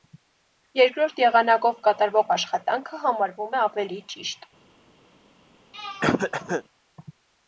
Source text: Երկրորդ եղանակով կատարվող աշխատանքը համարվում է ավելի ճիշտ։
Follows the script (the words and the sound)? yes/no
no